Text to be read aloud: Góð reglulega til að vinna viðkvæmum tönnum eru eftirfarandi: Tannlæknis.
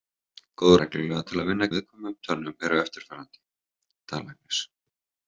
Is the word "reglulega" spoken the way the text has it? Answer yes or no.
yes